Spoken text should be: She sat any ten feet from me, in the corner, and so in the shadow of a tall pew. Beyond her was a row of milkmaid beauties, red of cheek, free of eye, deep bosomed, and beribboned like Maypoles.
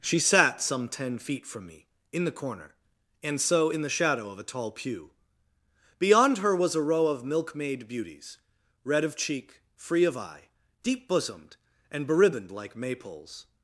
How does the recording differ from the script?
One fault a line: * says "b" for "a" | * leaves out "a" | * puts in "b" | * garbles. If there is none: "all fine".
* says "some" for "any"